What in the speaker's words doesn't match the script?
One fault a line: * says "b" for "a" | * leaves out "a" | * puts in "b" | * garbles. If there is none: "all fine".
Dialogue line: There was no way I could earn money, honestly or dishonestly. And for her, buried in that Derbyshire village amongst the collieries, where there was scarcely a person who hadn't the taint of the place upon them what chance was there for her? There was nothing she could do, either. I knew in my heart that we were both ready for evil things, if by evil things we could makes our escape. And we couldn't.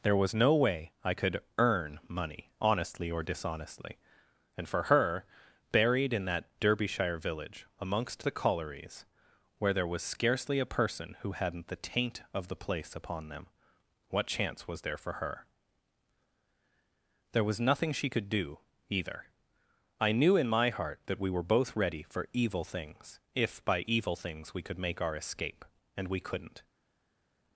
* says "make" for "makes"